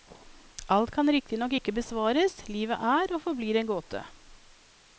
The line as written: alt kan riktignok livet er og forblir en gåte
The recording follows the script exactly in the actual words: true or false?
false